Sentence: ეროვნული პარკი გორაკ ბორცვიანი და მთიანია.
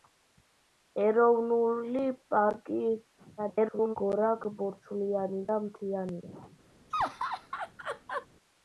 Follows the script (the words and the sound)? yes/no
no